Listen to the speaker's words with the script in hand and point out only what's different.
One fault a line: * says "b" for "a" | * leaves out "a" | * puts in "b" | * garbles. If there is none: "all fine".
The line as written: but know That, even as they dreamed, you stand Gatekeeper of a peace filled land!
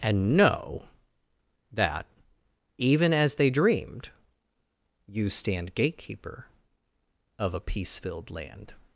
* says "and" for "but"